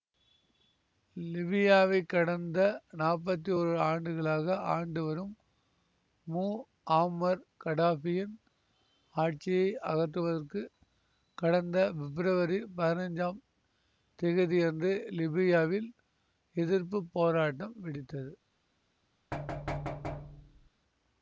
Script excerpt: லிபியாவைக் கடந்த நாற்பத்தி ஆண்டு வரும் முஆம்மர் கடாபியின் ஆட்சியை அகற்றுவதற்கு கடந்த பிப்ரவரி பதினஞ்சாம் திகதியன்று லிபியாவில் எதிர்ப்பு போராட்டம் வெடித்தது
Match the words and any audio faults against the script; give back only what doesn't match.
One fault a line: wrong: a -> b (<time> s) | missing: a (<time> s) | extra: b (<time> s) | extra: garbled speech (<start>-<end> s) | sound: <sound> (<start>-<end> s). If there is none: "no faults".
extra: ஓரு ஆண்டுகளாக (3.6 s)
sound: thud (19.3-20.7 s)